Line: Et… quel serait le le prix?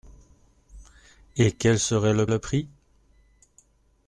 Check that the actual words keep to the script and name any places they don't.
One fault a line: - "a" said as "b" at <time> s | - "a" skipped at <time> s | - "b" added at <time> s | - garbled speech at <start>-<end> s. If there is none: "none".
none